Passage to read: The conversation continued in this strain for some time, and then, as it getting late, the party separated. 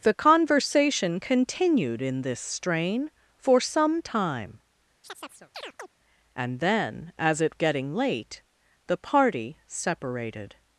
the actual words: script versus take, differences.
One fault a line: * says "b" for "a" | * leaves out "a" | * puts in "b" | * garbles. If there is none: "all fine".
all fine